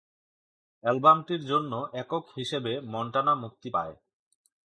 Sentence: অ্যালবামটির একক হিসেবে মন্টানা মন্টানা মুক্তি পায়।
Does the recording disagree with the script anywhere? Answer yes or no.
yes